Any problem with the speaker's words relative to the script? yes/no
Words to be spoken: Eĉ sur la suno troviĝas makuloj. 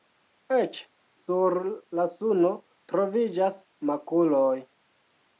no